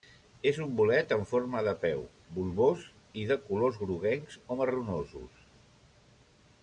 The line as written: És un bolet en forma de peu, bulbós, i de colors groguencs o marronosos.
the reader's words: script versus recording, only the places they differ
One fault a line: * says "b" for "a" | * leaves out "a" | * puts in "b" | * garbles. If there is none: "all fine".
all fine